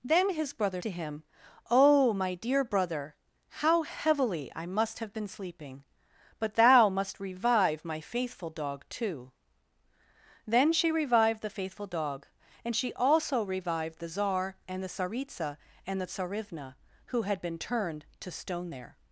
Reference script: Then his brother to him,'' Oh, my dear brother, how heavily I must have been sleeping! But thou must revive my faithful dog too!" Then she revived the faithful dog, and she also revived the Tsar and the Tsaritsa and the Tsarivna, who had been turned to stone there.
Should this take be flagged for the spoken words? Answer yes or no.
no